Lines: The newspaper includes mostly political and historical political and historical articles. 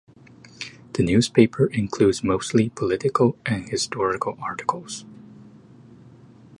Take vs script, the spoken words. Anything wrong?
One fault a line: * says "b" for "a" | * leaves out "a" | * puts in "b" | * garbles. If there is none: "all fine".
* leaves out "political and historical"